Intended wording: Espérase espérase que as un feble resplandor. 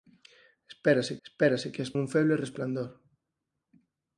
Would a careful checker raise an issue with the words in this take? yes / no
no